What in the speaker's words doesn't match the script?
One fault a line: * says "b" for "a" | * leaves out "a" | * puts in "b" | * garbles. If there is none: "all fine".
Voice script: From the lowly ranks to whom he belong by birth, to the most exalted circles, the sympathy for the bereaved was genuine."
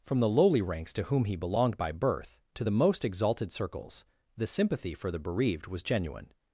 * says "belonged" for "belong"